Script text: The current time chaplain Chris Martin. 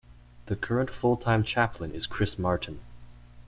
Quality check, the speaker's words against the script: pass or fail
fail